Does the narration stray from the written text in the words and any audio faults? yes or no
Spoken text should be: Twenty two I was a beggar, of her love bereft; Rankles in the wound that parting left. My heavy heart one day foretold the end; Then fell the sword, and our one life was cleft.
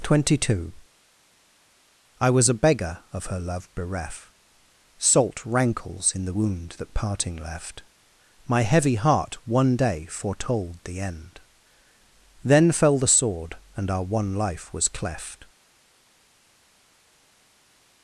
yes